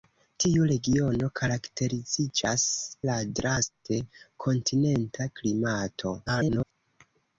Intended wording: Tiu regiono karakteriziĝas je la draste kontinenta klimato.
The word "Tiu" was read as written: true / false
true